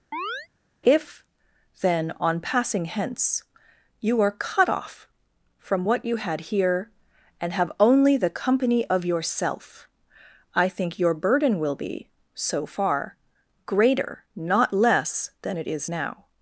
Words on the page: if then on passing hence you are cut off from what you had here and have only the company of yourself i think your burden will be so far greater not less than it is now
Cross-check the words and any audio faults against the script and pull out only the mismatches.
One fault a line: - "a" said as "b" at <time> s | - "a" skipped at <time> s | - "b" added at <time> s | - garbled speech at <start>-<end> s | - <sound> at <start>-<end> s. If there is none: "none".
- chirp at 0.1-0.5 s